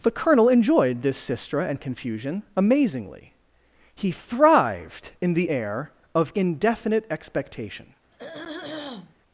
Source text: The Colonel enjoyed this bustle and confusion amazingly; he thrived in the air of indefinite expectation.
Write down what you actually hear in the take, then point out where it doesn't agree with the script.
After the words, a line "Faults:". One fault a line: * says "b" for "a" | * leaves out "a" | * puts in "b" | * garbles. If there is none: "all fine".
The Colonel enjoyed this sistra and confusion amazingly; he thrived in the air of indefinite expectation.
Faults:
* says "sistra" for "bustle"